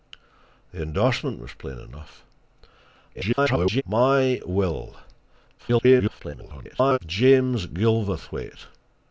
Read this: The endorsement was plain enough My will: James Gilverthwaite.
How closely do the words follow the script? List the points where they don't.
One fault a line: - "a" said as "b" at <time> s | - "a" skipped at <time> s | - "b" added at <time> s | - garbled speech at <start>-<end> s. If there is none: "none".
- garbled speech at 3.1-3.8 s
- garbled speech at 5.6-7.0 s